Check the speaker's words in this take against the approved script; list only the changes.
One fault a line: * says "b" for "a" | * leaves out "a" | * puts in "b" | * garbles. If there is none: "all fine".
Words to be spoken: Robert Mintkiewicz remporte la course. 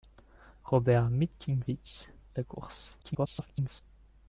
* leaves out "remporte"
* garbles